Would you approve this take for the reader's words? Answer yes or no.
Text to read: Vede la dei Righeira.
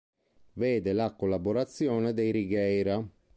no